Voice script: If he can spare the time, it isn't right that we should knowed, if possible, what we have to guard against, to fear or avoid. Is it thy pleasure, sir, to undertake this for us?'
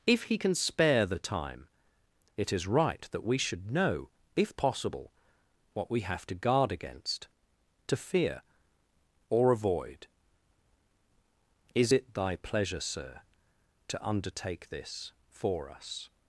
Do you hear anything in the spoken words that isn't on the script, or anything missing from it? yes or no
yes